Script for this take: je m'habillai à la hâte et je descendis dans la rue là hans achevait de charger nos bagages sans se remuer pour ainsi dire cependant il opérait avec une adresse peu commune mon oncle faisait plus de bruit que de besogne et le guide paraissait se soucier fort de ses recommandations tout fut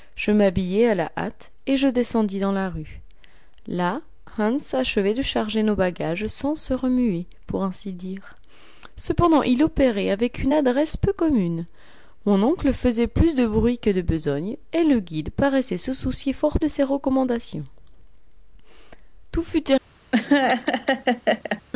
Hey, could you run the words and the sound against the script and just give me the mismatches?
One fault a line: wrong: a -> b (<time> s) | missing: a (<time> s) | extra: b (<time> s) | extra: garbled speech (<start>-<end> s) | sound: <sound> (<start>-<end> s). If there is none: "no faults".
sound: laugh (20.1-21.6 s)